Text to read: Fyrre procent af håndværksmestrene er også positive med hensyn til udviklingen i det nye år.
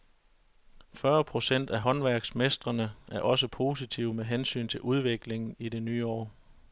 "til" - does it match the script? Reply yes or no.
yes